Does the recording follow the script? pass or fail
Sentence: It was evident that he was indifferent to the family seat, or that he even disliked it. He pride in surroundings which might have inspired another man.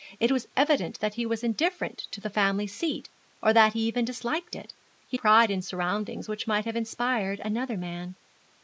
pass